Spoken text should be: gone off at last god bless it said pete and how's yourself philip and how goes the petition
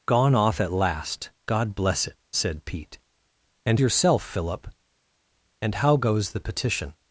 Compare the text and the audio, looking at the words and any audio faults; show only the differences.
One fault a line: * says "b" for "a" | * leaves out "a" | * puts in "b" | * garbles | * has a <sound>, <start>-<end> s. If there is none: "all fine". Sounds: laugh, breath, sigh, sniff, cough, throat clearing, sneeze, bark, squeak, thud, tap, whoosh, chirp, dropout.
* leaves out "how's"